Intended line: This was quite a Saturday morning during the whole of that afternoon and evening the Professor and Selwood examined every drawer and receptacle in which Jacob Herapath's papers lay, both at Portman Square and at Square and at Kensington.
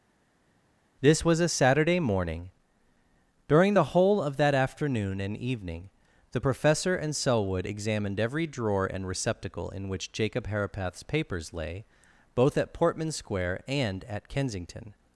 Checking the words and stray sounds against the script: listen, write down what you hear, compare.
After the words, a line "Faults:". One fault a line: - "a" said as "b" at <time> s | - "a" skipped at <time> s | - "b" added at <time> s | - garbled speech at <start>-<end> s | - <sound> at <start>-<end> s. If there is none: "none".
This was a Saturday morning during the whole of that afternoon and evening the Professor and Selwood examined every drawer and receptacle in which Jacob Herapath's papers lay, both at Portman Square and at Kensington.
Faults:
- "quite" skipped at 1.4 s
- "Square and at" skipped at 14.3 s